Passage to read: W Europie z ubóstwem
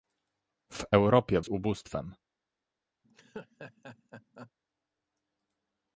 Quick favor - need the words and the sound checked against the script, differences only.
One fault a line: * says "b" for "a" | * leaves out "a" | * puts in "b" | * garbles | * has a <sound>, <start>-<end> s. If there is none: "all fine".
* has a laugh, 3.0-4.5 s